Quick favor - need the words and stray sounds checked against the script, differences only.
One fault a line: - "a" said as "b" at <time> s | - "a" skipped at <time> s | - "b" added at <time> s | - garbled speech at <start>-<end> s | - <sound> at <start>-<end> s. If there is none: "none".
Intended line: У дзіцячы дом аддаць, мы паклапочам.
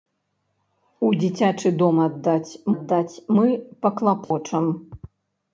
- "аддаць" added at 2.7 s
- dropout at 4.2-4.3 s